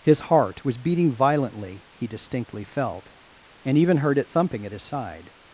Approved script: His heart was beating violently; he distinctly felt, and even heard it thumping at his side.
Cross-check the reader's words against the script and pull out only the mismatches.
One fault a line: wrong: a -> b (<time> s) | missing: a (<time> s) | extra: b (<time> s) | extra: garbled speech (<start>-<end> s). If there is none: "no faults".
no faults